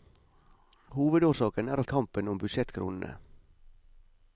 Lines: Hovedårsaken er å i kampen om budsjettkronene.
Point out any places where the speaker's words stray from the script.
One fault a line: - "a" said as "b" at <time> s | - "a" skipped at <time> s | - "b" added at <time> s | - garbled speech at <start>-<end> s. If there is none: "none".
none